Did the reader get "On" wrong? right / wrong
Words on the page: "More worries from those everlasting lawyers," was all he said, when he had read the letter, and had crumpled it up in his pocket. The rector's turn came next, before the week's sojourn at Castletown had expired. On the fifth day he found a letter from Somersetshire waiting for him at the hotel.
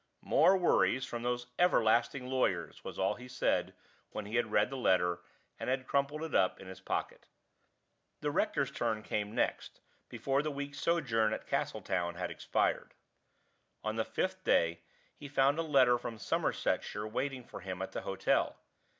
right